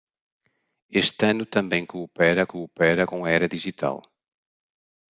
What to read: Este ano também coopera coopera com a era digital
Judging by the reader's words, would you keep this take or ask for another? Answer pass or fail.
pass